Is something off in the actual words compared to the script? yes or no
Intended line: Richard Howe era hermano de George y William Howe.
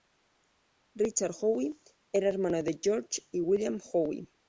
no